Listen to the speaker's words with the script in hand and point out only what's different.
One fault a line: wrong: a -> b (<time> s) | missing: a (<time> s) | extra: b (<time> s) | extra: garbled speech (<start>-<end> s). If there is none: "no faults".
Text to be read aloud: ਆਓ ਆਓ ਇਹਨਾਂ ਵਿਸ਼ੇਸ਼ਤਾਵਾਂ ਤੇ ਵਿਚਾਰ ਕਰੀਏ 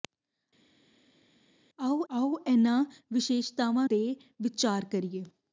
no faults